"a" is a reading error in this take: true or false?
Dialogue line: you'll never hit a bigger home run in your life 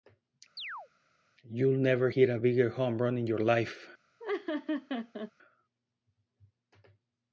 false